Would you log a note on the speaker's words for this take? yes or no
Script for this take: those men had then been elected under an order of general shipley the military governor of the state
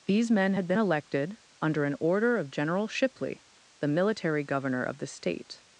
yes